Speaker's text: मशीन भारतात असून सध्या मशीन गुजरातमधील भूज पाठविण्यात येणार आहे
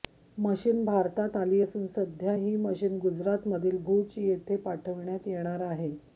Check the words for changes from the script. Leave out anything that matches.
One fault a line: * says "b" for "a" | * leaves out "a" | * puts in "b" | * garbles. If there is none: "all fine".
* puts in "आली"
* puts in "ही"
* puts in "येथे"